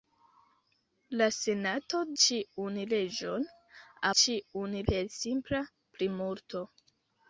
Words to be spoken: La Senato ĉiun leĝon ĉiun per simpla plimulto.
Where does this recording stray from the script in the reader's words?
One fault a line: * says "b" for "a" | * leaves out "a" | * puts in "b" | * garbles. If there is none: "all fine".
all fine